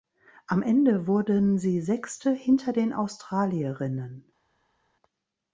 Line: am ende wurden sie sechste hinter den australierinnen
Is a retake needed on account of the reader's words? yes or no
no